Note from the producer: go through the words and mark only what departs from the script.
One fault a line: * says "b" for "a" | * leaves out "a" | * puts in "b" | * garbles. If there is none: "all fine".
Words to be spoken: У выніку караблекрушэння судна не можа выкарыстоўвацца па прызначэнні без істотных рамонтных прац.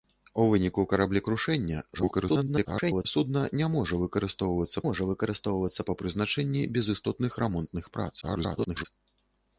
* garbles
* puts in "можа выкарыстоўвацца"
* garbles